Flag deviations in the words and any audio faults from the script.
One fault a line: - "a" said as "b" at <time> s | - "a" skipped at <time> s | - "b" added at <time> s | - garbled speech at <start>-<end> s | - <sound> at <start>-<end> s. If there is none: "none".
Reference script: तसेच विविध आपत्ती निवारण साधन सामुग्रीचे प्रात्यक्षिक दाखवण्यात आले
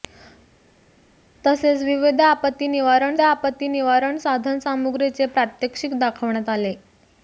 - "आपत्ती निवारण" added at 3.2 s